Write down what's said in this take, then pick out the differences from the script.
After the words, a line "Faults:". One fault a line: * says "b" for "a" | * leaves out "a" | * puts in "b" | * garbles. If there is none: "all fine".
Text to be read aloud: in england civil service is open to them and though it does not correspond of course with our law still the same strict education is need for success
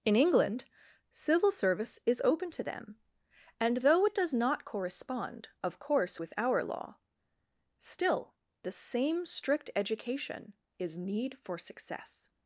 in england civil service is open to them and though it does not correspond of course with our law still the same strict education is need for success
Faults:
all fine